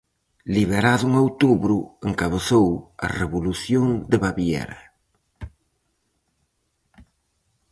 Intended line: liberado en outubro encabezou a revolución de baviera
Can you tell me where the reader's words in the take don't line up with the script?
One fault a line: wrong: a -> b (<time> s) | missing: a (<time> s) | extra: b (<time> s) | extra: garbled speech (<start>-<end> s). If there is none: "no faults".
no faults